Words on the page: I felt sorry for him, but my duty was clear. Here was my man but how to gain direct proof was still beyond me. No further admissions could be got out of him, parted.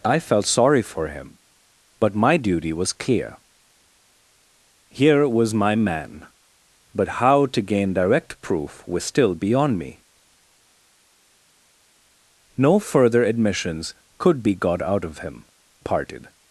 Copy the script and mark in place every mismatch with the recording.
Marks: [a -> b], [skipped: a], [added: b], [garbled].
I felt sorry for him, but my duty was clear. Here was my man but how to gain direct proof was still beyond me. No further admissions could be got out of him, parted.